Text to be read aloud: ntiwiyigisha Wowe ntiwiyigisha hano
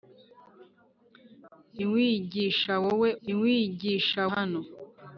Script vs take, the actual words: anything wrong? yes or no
no